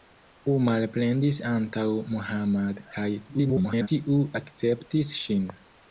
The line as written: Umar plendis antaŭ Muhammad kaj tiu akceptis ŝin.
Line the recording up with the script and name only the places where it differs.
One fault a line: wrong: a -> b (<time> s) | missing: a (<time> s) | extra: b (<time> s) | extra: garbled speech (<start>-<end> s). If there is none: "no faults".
extra: garbled speech (3.3-3.9 s)